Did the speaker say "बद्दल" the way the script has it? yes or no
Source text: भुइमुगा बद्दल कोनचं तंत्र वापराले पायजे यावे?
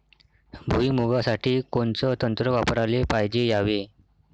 no